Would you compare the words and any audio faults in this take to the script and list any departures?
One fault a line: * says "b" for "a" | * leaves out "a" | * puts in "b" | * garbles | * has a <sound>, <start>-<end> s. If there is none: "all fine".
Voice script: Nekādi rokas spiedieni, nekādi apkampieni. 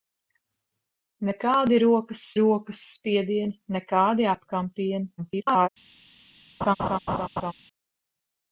* puts in "rokas"
* garbles
* has a laugh, 6.6-7.5 s